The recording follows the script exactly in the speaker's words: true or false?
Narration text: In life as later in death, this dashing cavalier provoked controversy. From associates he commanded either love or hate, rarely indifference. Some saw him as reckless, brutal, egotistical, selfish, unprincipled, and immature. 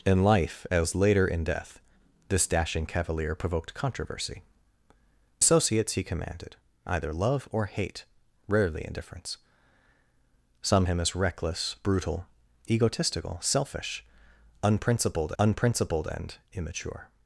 false